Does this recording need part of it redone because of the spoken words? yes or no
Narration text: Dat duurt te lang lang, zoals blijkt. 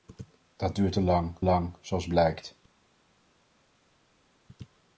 no